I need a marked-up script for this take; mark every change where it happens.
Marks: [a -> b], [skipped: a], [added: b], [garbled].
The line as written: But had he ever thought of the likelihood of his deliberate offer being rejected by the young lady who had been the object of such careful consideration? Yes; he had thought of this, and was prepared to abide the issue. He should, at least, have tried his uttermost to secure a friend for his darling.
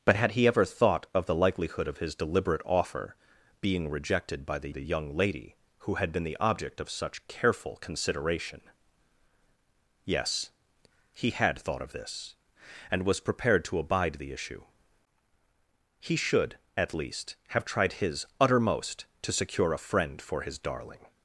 But had he ever thought of the likelihood of his deliberate offer being rejected by the [added: the] young lady who had been the object of such careful consideration? Yes; he had thought of this, and was prepared to abide the issue. He should, at least, have tried his uttermost to secure a friend for his darling.